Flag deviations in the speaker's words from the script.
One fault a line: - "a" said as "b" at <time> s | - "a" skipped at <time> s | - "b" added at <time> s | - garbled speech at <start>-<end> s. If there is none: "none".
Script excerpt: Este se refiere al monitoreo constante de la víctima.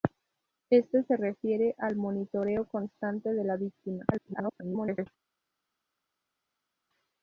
- garbled speech at 4.1-5.1 s